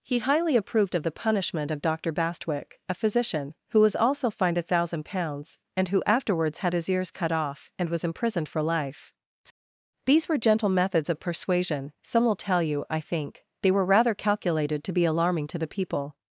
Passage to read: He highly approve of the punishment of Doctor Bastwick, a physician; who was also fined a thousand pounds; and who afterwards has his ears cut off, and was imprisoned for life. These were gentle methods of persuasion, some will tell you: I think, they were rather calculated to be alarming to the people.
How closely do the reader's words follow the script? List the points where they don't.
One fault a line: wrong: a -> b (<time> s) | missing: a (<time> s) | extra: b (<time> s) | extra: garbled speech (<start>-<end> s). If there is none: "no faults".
wrong: approve -> approved (0.6 s)
wrong: has -> had (6.6 s)